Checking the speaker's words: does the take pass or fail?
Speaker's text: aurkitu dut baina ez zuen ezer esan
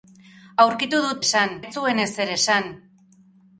fail